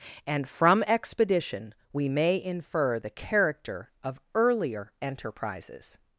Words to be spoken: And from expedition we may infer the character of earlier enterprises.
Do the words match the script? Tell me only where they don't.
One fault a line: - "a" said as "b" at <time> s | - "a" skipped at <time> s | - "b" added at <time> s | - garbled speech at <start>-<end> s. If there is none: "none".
none